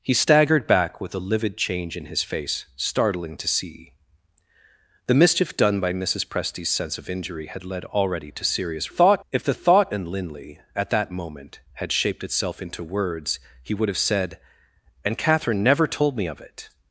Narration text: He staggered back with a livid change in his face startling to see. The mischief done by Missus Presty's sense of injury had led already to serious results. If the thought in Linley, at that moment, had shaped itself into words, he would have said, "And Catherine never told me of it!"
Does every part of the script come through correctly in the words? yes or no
no